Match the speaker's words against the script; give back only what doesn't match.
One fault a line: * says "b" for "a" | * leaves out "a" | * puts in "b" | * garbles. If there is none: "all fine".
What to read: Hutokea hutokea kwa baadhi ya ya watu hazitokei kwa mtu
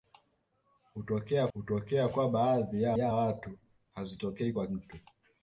all fine